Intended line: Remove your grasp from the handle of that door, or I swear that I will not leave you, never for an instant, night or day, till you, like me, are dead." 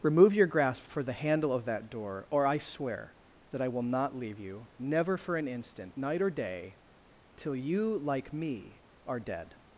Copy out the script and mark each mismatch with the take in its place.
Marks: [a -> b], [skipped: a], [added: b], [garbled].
Remove your grasp [from -> for] the handle of that door, or I swear that I will not leave you, never for an instant, night or day, till you, like me, are dead."